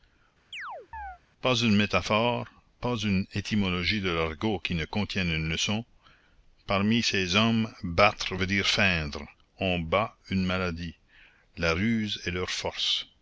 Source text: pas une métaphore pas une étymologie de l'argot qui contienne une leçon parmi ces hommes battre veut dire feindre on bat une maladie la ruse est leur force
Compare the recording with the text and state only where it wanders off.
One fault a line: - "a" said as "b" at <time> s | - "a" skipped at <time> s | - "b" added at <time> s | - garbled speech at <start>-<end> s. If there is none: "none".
- "ne" added at 4.7 s